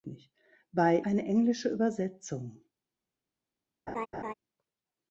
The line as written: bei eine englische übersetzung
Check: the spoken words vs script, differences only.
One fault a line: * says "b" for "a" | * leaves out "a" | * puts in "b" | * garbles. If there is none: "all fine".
all fine